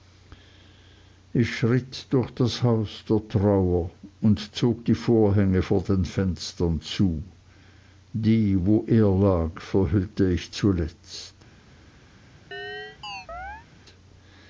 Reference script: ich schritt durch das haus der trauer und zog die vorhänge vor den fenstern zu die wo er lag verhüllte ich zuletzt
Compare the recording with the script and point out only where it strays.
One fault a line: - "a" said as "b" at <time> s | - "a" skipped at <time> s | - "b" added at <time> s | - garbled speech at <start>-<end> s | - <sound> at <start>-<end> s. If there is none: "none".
- chirp at 12.5-13.7 s